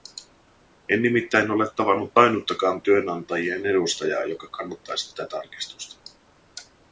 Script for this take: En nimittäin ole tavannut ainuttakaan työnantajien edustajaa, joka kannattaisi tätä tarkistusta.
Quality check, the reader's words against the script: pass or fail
pass